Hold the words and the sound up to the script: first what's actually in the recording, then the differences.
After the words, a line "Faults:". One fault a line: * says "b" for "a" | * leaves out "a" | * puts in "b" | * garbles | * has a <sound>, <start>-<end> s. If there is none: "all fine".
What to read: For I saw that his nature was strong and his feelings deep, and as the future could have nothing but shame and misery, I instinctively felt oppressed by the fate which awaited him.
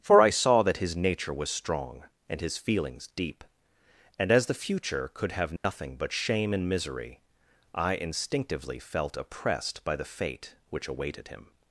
For I saw that his nature was strong and his feelings deep, and as the future could have nothing but shame and misery, I instinctively felt oppressed by the fate which awaited him.
Faults:
* has a dropout, 5.6-5.6 s